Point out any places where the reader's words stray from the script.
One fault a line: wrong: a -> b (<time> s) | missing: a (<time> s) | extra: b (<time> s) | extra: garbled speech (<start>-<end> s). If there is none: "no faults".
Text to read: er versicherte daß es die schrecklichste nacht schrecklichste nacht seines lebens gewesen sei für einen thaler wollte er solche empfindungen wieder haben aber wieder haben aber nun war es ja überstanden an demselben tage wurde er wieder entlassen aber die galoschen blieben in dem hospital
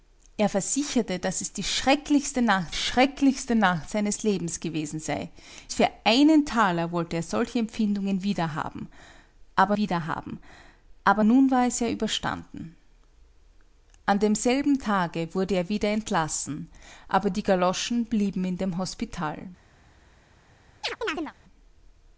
no faults